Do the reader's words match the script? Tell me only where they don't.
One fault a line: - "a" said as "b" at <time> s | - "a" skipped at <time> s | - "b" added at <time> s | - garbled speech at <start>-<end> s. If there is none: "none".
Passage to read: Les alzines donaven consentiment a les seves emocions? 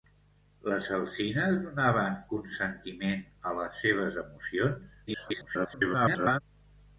- garbled speech at 5.1-6.4 s